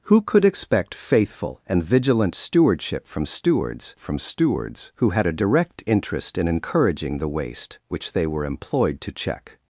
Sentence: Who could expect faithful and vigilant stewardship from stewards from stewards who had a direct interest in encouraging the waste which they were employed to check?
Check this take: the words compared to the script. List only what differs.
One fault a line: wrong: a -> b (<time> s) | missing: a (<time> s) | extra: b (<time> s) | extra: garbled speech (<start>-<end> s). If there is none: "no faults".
no faults